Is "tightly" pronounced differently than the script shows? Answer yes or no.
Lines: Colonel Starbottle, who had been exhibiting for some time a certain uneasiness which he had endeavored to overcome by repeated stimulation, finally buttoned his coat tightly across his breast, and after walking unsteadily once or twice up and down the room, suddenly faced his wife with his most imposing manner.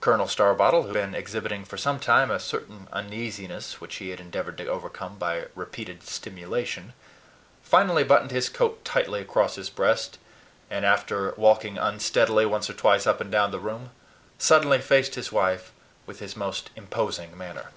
no